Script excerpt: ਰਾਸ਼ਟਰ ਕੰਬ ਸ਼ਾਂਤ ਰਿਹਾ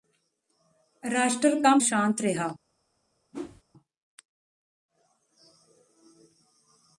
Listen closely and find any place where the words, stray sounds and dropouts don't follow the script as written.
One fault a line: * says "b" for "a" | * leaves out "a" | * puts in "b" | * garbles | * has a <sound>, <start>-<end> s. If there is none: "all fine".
* has a whoosh, 3.3-3.6 s